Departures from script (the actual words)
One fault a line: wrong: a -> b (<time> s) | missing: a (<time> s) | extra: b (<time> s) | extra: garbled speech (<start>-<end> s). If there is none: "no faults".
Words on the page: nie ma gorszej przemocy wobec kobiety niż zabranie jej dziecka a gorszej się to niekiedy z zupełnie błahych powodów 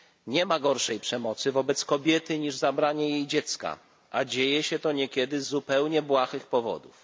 wrong: gorszej -> dzieje (4.2 s)